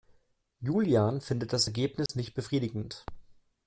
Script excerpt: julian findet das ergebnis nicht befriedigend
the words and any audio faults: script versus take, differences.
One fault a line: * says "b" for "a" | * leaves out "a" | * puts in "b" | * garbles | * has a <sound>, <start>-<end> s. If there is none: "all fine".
* has a dropout, 2.1-2.1 s